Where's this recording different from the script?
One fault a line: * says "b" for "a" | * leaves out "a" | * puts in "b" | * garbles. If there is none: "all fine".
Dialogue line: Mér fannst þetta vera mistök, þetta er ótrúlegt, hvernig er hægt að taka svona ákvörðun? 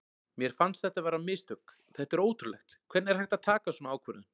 all fine